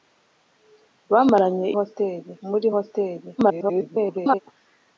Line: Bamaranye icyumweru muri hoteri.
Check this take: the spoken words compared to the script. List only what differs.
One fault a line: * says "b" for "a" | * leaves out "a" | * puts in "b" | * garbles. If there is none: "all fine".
* says "hoteri" for "icyumweru"
* garbles